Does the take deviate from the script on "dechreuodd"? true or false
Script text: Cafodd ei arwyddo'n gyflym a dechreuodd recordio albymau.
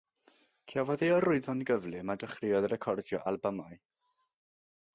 false